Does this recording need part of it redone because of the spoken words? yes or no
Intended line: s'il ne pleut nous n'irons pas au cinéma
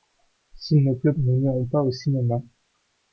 no